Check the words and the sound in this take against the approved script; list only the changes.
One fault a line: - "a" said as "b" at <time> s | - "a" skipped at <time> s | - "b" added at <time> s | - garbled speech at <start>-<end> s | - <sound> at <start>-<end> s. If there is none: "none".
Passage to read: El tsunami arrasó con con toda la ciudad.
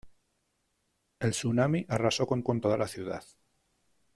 none